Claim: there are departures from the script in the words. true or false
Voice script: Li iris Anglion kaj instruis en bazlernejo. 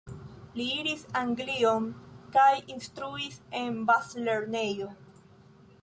false